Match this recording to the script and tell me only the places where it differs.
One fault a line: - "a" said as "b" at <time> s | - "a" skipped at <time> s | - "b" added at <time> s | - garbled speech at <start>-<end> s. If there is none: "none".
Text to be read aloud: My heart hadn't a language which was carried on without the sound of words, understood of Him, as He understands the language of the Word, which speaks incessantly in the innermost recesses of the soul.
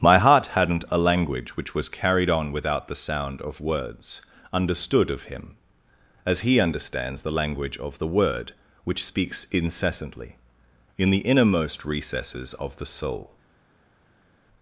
none